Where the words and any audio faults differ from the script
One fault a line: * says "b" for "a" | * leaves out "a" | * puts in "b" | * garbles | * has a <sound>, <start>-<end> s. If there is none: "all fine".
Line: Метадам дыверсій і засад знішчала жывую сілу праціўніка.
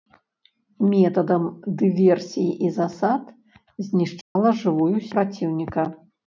* has a dropout, 4.2-4.4 s
* leaves out "сілу"